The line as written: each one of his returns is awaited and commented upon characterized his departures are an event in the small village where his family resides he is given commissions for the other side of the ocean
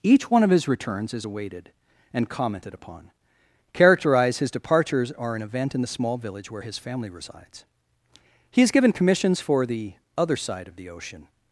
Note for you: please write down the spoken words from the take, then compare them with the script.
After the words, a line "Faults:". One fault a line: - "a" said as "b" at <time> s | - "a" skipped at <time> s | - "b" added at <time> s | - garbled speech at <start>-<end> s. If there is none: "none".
each one of his returns is awaited and commented upon characterized his departures are an event in the small village where his family resides he is given commissions for the other side of the ocean
Faults:
none